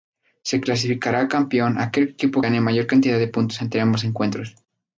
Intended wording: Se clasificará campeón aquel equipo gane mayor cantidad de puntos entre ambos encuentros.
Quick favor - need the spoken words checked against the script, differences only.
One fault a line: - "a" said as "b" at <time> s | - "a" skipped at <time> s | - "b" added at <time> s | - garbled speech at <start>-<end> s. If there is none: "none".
none